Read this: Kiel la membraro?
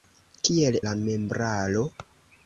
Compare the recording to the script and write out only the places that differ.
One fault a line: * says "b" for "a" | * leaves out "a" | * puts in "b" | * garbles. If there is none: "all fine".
all fine